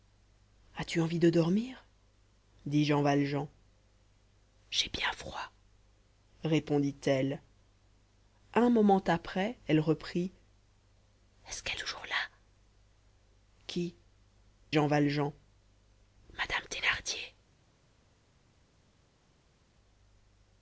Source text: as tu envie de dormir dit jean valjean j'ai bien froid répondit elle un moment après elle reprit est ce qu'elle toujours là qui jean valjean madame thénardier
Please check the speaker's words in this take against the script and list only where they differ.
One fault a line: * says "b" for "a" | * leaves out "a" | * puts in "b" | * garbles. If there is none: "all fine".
all fine